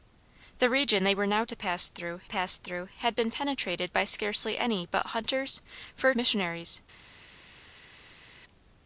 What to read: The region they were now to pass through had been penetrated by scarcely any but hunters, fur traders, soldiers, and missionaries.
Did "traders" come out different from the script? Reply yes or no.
yes